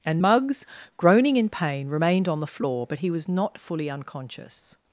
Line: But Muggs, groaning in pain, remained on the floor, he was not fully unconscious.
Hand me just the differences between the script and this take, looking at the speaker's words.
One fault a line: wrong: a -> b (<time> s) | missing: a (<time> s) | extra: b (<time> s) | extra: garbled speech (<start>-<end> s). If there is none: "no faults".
wrong: But -> And (0.1 s)
extra: but (2.9 s)